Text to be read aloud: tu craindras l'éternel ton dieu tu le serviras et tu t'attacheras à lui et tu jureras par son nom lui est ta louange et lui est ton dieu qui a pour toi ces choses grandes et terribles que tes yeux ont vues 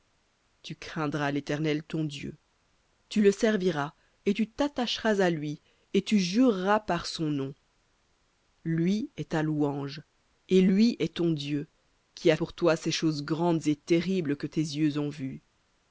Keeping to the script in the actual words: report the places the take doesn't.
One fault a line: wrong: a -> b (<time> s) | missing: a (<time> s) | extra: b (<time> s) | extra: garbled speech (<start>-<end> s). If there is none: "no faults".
no faults